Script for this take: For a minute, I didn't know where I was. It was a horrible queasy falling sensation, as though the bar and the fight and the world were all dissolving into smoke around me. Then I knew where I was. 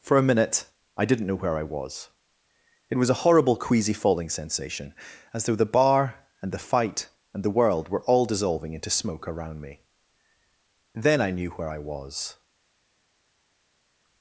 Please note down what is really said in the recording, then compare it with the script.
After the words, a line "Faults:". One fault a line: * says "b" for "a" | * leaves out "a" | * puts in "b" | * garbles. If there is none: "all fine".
For a minute, I didn't know where I was. It was a horrible queasy falling sensation, as though the bar and the fight and the world were all dissolving into smoke around me. Then I knew where I was.
Faults:
all fine